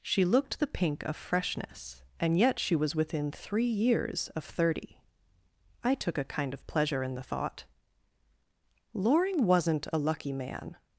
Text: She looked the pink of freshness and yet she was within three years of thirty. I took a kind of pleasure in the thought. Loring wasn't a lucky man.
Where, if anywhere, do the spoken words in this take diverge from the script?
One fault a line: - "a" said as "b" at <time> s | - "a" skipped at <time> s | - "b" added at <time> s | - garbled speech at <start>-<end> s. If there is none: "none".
none